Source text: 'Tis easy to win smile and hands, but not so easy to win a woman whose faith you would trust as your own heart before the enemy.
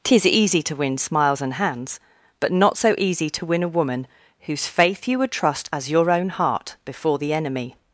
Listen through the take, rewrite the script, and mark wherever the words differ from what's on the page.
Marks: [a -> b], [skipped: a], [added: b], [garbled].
'Tis easy to win [smile -> smiles] and hands, but not so easy to win a woman whose faith you would trust as your own heart before the enemy.